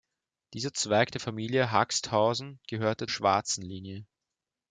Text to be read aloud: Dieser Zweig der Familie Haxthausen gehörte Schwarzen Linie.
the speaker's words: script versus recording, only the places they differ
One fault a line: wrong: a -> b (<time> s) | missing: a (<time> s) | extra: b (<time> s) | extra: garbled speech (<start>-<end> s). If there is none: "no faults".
no faults